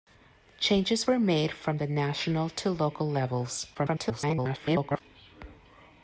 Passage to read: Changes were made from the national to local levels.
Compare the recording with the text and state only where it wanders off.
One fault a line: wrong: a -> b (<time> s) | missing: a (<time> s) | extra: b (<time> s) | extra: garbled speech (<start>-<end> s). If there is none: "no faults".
extra: garbled speech (3.7-5.0 s)